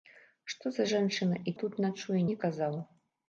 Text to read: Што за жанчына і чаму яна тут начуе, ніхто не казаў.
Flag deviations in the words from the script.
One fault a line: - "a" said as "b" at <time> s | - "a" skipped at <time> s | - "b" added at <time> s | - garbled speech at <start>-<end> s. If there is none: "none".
- "чаму яна" skipped at 1.5 s
- "ніхто" skipped at 2.2 s